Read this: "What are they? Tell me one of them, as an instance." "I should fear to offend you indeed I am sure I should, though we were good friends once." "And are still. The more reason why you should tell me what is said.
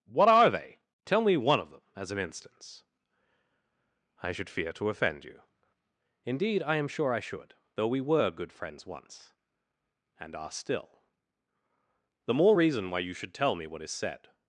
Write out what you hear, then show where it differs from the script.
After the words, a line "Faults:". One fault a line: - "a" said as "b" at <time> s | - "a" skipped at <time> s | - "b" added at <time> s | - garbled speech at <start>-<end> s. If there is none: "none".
"What are they? Tell me one of them, as an instance." "I should fear to offend you indeed I am sure I should, though we were good friends once." "And are still. The more reason why you should tell me what is said.
Faults:
none